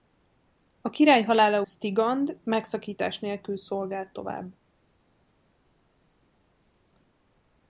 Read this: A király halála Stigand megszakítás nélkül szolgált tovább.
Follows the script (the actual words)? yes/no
yes